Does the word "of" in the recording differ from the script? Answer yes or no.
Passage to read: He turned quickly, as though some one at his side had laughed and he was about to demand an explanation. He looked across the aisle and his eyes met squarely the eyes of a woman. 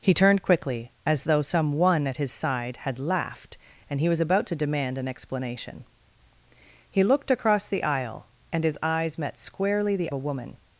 yes